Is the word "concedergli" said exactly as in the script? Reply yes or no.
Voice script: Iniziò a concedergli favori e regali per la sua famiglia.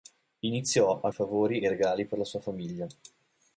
no